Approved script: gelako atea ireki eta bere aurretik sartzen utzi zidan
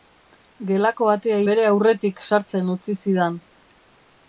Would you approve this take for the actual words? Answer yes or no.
no